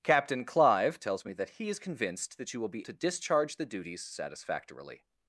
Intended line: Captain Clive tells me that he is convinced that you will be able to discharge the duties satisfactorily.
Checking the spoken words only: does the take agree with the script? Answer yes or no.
no